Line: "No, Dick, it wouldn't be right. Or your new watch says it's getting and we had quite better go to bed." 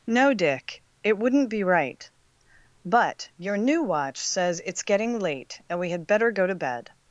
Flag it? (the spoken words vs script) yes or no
yes